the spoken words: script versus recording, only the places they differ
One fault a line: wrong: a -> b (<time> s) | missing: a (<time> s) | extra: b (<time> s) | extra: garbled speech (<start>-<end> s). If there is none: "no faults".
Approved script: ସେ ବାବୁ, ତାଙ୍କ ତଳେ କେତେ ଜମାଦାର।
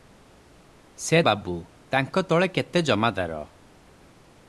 no faults